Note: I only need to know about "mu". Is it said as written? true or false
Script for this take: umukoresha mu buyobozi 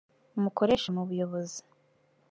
true